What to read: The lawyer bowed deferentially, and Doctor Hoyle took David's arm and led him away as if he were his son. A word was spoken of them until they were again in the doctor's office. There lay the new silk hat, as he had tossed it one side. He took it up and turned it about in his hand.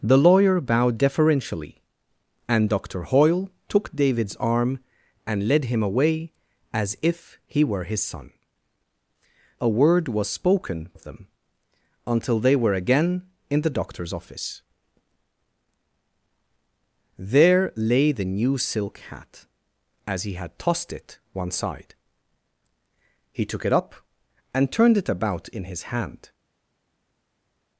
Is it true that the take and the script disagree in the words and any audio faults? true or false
false